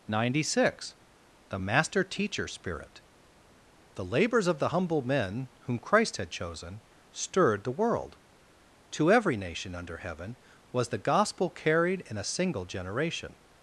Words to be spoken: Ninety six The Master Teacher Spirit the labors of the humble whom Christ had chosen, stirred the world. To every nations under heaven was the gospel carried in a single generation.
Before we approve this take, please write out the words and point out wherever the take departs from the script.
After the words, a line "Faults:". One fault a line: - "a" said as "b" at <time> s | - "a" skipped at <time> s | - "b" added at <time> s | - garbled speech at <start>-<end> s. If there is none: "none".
Ninety six The Master Teacher Spirit the labors of the humble men whom Christ had chosen, stirred the world. To every nation under heaven was the gospel carried in a single generation.
Faults:
- "men" added at 5.0 s
- "nations" said as "nation" at 9.3 s